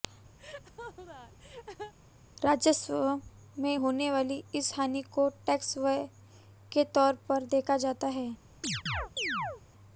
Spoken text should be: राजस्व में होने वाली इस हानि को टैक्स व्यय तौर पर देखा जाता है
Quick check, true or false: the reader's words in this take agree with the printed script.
false